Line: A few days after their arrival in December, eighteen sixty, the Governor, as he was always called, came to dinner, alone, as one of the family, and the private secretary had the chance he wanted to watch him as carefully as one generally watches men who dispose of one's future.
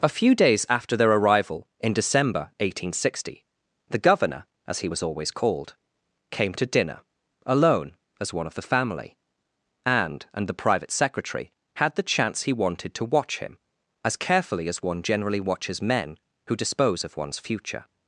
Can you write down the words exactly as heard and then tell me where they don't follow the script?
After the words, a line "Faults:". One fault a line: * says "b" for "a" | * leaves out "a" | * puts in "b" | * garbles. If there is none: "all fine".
A few days after their arrival in December, eighteen sixty, the Governor, as he was always called, came to dinner, alone, as one of the family, and and the private secretary had the chance he wanted to watch him as carefully as one generally watches men who dispose of one's future.
Faults:
* puts in "and"